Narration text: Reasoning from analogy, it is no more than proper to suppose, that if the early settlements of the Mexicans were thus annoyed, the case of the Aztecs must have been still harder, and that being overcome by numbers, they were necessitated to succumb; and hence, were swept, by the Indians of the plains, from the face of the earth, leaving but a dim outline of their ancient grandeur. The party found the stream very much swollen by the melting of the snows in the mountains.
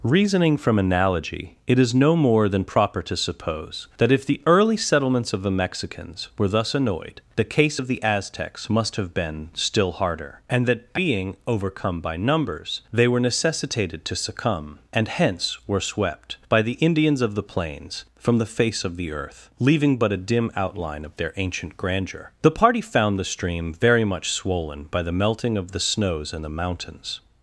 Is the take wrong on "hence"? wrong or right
right